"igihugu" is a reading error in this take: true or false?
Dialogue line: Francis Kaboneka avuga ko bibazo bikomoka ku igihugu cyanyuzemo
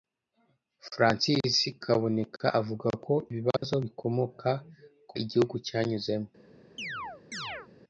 false